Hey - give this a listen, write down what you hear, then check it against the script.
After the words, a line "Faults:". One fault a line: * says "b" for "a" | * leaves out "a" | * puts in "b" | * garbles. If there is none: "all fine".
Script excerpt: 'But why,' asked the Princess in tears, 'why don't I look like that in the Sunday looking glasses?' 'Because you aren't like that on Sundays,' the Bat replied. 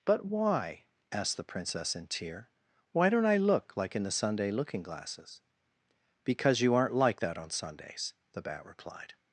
'But why,' asked the Princess in tear, 'why don't I look like in the Sunday looking glasses?' 'Because you aren't like that on Sundays,' the Bat replied.
Faults:
* says "tear" for "tears"
* leaves out "that"